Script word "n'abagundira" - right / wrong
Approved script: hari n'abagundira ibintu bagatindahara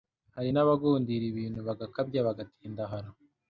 right